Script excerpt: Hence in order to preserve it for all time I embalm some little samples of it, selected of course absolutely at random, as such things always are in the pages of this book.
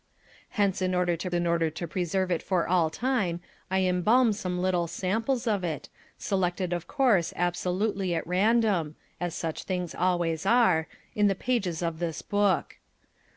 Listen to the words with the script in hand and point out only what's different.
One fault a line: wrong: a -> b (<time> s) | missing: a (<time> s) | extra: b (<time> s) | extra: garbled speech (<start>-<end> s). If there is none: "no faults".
extra: in order to (1.3 s)